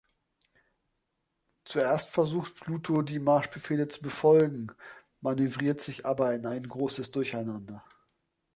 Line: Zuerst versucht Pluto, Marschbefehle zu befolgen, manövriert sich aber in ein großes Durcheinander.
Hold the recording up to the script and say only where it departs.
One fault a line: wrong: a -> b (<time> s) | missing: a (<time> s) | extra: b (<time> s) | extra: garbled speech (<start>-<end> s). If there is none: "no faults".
extra: die (3.0 s)